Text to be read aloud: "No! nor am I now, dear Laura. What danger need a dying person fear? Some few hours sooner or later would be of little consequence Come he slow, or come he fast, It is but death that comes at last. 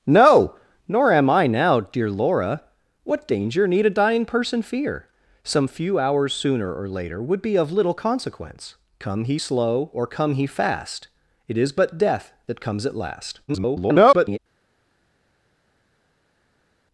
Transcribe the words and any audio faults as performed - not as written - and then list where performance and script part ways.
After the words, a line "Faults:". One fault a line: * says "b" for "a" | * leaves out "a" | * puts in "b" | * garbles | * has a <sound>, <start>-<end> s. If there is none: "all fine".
"No! nor am I now, dear Laura. What danger need a dying person fear? Some few hours sooner or later would be of little consequence Come he slow, or come he fast, It is but death that comes at last. [garbled]
Faults:
* garbles